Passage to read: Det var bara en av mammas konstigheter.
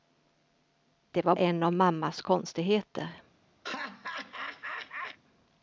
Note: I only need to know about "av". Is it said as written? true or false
true